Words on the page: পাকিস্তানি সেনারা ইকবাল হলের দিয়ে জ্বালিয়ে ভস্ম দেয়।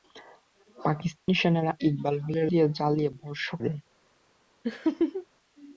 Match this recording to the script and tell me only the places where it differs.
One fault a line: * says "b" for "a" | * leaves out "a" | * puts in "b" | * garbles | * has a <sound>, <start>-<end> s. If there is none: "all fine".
* has a dropout, 1.2-1.3 s
* has a laugh, 4.6-5.3 s